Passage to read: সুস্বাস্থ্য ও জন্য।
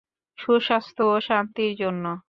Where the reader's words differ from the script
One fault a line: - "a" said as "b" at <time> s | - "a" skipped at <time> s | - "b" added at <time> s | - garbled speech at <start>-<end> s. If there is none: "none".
- "শান্তির" added at 1.2 s